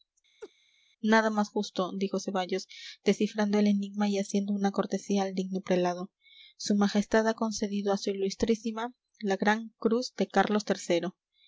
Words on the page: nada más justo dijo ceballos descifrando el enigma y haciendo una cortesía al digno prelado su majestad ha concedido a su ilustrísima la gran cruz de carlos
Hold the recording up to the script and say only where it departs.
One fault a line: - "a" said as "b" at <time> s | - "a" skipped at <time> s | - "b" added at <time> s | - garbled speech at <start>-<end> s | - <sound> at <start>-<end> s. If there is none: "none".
- laugh at 0.4-0.5 s